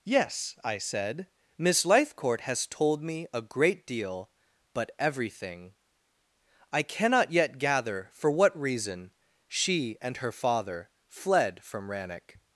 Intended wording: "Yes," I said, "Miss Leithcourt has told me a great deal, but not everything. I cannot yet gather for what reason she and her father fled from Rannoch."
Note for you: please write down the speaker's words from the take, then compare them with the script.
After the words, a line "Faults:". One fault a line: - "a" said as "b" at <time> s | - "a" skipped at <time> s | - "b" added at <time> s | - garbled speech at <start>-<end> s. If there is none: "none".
"Yes," I said, "Miss Leithcourt has told me a great deal, but everything. I cannot yet gather for what reason she and her father fled from Rannoch."
Faults:
- "not" skipped at 4.9 s